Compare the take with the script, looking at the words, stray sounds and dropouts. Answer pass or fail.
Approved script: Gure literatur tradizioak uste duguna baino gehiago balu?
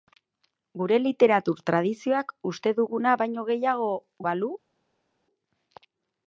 pass